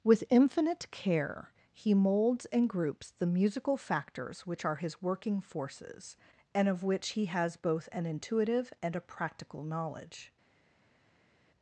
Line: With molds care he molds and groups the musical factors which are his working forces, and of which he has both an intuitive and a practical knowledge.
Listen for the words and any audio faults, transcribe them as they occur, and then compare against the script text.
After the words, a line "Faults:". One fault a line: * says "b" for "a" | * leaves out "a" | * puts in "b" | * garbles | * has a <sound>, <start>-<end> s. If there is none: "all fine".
With infinite care he molds and groups the musical factors which are his working forces, and of which he has both an intuitive and a practical knowledge.
Faults:
* says "infinite" for "molds"